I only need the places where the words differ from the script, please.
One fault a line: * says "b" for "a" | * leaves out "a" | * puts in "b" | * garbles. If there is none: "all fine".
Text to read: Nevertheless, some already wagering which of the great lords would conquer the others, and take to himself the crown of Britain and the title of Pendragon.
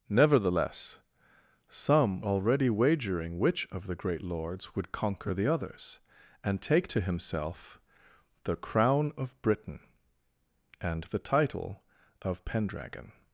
all fine